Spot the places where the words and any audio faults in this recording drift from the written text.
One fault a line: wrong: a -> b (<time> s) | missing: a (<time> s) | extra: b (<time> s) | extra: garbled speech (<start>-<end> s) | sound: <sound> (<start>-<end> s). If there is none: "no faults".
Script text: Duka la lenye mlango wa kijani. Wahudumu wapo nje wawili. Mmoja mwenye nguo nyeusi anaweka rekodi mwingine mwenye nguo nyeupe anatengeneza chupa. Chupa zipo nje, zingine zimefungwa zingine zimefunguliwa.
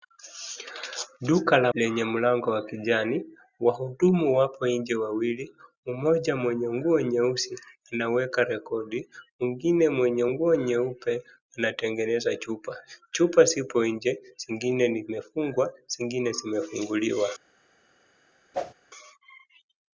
sound: whoosh (18.5-18.7 s)